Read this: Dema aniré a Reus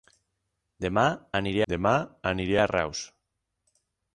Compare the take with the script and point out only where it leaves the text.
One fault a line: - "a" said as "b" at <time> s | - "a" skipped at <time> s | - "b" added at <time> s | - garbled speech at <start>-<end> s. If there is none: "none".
- "dema aniré" added at 1.7 s